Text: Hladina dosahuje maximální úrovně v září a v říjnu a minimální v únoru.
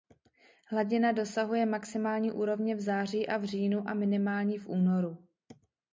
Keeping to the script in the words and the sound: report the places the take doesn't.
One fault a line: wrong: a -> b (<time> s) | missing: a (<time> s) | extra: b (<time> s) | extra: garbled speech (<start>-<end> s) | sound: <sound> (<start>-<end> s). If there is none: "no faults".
no faults